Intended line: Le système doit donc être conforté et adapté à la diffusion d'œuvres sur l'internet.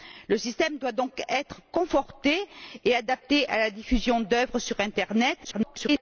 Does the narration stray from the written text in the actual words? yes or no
yes